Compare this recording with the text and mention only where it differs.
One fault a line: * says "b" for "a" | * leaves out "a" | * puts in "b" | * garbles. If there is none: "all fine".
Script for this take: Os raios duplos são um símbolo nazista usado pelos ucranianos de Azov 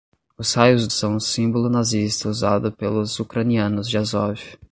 * leaves out "duplos"